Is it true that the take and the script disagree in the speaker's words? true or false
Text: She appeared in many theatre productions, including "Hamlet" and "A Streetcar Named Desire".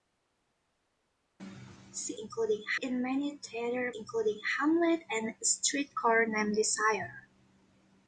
true